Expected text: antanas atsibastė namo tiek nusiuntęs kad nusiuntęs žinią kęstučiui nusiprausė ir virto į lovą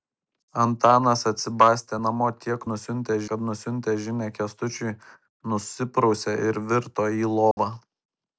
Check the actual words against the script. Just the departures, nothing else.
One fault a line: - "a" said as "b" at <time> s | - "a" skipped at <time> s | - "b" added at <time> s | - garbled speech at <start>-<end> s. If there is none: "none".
none